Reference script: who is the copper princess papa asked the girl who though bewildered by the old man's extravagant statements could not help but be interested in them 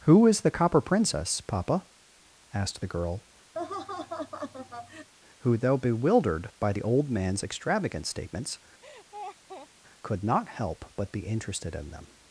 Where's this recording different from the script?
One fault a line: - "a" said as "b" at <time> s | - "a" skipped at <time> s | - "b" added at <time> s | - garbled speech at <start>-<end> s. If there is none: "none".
none